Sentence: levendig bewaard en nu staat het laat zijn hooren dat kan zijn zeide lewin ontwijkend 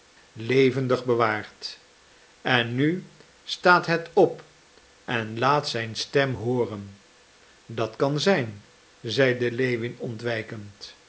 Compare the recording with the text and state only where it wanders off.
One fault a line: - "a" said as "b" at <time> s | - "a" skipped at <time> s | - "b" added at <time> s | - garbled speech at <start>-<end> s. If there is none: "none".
- "op en" added at 4.1 s
- "stem" added at 6.0 s